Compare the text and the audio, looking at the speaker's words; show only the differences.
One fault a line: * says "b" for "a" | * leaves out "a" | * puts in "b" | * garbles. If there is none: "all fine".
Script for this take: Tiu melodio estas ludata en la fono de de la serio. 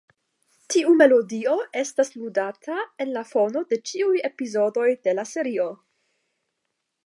* puts in "ĉiuj epizodoj"